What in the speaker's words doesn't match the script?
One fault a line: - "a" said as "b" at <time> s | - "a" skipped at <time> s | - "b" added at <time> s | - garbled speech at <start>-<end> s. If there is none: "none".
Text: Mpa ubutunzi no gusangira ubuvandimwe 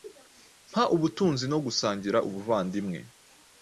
none